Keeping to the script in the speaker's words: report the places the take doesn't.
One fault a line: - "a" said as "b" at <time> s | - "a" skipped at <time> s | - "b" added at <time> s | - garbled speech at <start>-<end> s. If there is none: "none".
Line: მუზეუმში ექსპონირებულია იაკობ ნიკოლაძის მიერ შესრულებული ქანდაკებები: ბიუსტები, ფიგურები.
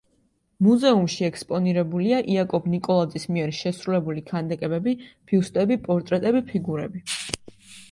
- "პორტრეტები" added at 5.9 s